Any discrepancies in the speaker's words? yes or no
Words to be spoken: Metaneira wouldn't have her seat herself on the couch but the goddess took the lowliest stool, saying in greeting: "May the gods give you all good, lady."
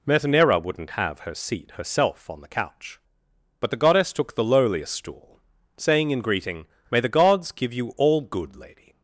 no